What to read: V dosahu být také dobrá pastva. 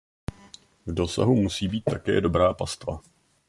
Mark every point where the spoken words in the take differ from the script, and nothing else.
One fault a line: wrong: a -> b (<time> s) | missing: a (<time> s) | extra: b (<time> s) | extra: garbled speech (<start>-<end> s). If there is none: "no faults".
extra: musí (1.4 s)